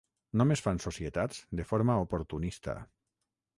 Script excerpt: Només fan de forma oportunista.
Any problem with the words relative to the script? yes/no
yes